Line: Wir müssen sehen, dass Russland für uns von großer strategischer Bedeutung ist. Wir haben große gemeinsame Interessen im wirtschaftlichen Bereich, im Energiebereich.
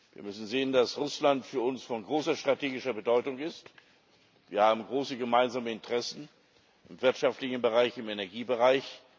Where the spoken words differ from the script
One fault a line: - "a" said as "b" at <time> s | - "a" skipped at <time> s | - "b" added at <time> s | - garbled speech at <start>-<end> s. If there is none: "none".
none